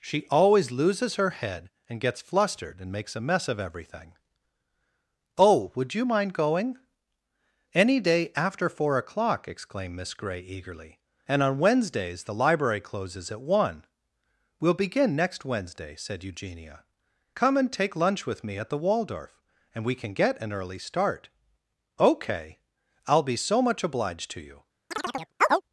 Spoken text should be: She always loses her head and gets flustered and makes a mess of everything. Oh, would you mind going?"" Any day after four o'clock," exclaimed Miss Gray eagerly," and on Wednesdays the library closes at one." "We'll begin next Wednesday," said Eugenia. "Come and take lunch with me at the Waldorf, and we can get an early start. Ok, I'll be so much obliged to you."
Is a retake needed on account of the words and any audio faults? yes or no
yes